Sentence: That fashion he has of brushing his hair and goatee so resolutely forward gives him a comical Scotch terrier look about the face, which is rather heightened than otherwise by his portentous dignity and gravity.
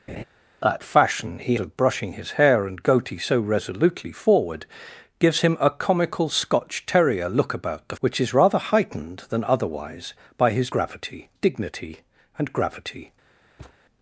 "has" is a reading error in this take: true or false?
true